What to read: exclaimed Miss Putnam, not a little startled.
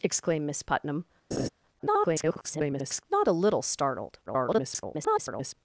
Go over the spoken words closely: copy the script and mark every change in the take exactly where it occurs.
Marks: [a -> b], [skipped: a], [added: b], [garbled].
exclaimed Miss Putnam, [garbled] not a little startled. [garbled]